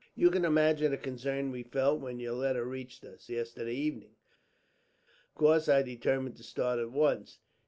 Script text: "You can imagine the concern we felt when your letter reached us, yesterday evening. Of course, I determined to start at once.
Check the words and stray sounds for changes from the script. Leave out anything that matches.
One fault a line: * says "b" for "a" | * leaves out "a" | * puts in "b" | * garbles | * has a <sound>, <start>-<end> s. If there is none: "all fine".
all fine